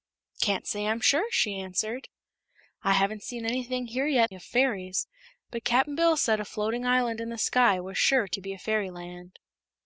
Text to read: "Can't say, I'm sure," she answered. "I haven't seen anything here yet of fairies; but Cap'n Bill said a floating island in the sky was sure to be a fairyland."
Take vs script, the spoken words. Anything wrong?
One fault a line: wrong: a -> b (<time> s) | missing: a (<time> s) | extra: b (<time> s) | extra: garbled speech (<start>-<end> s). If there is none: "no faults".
no faults